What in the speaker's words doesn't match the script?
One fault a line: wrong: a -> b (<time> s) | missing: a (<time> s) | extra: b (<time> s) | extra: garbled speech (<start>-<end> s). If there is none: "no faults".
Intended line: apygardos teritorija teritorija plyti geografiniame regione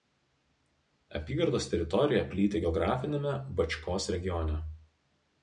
missing: teritorija (2.2 s)
extra: bačkos (3.6 s)